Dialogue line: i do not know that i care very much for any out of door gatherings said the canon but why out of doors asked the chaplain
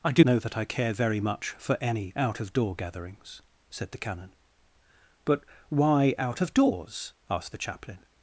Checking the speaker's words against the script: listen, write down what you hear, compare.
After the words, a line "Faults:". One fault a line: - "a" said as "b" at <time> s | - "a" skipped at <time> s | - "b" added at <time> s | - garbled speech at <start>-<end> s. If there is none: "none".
i do know that i care very much for any out of door gatherings said the canon but why out of doors asked the chaplain
Faults:
- "not" skipped at 0.2 s